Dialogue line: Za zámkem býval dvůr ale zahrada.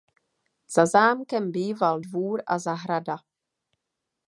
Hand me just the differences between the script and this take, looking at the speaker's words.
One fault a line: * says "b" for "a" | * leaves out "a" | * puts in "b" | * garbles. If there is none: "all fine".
* says "a" for "ale"